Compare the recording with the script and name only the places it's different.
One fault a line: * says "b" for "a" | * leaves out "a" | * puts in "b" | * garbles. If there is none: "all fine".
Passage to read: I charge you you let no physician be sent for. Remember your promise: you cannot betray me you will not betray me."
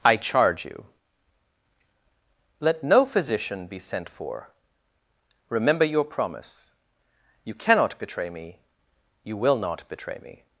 * leaves out "you"